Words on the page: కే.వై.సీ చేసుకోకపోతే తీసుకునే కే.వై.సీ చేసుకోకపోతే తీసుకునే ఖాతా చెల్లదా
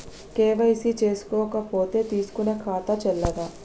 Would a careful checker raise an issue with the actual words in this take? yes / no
yes